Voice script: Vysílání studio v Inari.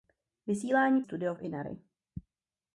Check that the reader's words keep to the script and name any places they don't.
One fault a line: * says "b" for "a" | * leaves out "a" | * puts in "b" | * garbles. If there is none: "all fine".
all fine